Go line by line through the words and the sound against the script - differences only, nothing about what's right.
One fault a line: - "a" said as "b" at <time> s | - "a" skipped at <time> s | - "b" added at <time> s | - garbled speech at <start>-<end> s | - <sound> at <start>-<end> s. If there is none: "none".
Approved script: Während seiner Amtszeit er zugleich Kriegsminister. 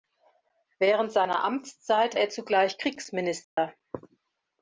- dropout at 3.4-3.6 s